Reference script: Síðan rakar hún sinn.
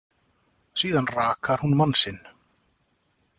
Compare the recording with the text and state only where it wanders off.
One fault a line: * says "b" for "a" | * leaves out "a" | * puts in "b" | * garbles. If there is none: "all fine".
* puts in "mann"